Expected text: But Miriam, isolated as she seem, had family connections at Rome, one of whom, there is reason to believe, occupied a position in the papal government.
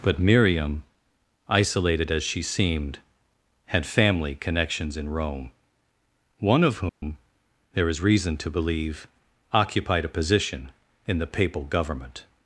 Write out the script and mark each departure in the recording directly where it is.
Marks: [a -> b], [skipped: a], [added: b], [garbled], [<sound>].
But Miriam, isolated as she [seem, -> seemed] had family connections [at -> in] Rome, one of whom, [dropout] there is reason to believe, occupied a position in the papal government.